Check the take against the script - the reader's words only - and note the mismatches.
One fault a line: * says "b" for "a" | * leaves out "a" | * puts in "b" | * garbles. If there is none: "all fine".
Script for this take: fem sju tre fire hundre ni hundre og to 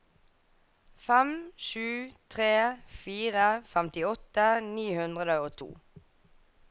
* says "femtiåtte" for "hundre"